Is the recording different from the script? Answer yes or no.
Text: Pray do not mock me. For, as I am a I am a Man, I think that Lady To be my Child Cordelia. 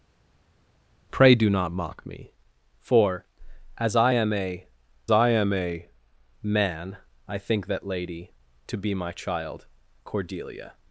no